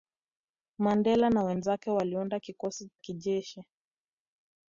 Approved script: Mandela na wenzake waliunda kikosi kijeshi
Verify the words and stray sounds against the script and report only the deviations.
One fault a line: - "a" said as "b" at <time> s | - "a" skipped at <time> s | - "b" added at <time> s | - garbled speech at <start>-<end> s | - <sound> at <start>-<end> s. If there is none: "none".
none